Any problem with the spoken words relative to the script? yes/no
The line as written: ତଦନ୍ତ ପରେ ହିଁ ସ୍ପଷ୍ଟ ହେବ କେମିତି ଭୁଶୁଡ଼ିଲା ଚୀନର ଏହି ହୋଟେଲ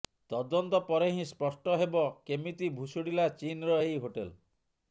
no